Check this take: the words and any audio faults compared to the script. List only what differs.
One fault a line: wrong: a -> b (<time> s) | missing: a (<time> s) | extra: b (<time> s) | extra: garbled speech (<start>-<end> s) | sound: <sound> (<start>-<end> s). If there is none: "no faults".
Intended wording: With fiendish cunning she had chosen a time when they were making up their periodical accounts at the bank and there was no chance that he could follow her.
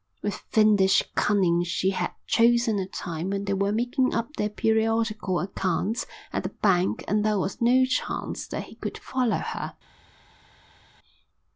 no faults